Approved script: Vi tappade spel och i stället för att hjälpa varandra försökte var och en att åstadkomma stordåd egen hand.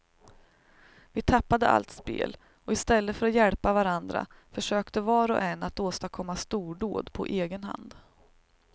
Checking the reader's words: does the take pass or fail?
fail